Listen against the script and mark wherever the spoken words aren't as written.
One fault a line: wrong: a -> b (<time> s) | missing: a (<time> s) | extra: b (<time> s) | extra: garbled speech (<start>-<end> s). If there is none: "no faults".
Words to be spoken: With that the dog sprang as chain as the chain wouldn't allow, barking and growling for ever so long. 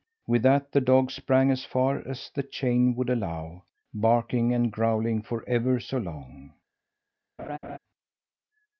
wrong: chain -> far (1.6 s)
wrong: wouldn't -> would (3.0 s)